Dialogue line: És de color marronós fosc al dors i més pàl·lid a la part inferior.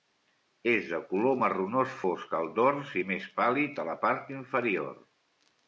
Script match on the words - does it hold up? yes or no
yes